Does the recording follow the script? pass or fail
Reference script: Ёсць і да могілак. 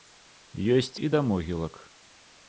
pass